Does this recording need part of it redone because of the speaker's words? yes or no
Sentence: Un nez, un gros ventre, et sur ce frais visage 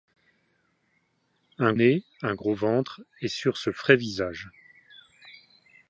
no